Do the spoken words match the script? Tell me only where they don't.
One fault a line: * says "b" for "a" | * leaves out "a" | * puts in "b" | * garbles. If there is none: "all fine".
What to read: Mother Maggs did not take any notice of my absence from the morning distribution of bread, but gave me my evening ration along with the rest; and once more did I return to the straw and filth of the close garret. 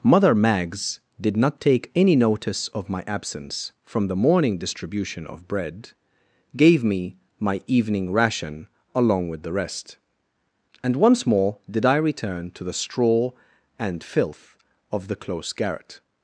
* leaves out "but"